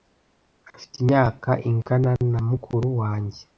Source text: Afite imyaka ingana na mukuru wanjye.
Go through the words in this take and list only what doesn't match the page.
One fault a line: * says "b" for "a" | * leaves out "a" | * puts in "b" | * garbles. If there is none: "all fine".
all fine